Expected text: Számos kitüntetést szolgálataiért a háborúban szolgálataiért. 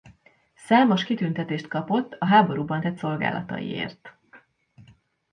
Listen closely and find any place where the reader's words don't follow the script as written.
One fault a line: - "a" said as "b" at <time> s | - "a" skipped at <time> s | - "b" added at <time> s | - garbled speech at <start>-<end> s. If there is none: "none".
- "szolgálataiért" said as "kapott" at 1.7 s
- "tett" added at 2.8 s